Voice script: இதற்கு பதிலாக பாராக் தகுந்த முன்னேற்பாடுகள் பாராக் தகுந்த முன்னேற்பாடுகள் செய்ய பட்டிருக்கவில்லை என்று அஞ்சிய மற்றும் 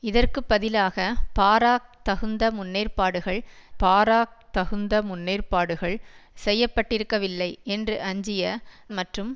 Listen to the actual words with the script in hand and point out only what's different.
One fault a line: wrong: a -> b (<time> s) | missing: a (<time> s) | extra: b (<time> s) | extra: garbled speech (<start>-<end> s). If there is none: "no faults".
no faults